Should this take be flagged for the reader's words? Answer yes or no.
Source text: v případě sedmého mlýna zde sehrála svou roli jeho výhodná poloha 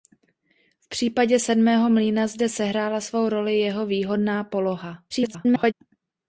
yes